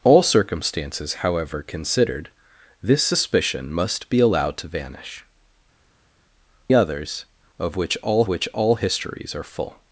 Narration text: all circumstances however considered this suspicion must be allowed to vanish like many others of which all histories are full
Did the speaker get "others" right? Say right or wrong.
wrong